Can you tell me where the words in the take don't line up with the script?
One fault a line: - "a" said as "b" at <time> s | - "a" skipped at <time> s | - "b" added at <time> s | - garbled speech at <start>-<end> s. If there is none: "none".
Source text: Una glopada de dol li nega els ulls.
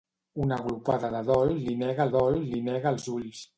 - "dol li nega" added at 2.1 s